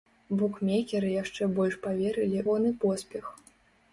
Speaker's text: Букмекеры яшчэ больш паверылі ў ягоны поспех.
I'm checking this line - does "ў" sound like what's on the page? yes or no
no